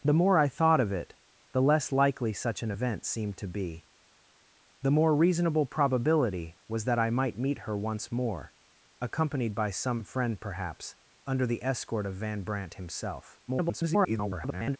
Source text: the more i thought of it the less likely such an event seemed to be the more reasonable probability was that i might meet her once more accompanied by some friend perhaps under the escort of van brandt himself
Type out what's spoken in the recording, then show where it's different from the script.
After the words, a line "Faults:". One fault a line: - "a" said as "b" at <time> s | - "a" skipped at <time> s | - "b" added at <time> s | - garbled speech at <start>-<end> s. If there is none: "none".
the more i thought of it the less likely such an event seemed to be the more reasonable probability was that i might meet her once more accompanied by some friend perhaps under the escort of van brandt himself [garbled]
Faults:
- garbled speech at 13.5-14.8 s